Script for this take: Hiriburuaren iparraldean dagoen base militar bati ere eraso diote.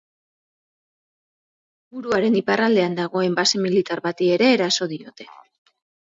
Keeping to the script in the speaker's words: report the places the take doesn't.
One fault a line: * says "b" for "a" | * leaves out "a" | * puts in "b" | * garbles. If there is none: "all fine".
all fine